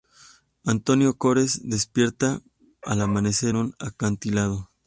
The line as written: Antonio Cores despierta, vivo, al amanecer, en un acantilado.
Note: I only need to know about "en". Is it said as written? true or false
false